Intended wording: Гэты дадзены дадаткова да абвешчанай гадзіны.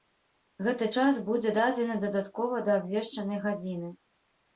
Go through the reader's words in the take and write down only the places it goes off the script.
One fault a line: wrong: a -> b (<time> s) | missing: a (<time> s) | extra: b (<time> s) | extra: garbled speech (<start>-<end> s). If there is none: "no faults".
extra: час будзе (1.0 s)